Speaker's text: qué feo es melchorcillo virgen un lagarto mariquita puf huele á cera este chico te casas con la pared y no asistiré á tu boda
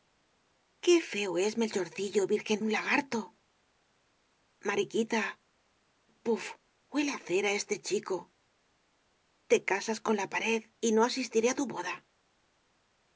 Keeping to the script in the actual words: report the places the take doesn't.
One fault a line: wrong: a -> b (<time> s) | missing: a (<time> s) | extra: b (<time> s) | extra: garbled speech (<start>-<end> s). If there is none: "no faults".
no faults